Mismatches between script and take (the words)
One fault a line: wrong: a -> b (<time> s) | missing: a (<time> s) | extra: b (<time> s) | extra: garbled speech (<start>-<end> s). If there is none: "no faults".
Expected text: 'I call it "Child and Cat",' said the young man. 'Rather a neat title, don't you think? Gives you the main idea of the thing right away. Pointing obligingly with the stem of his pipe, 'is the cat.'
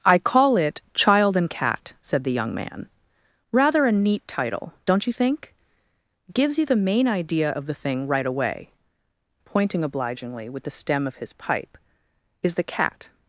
no faults